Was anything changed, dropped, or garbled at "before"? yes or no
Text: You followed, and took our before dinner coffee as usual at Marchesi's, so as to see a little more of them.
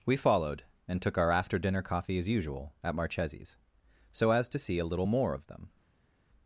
yes